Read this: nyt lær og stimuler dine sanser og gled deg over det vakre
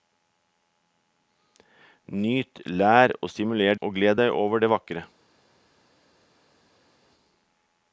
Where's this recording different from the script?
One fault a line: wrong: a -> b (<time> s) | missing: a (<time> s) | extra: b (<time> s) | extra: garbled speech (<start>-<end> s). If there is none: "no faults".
missing: dine sanser (3.8 s)